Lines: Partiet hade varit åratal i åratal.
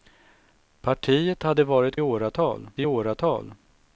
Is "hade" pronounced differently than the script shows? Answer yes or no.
no